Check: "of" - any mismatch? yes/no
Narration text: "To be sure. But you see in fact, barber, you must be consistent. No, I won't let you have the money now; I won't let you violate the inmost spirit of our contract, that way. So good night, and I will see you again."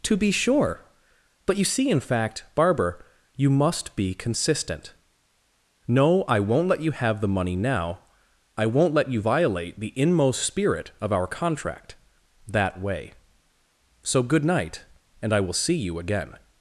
no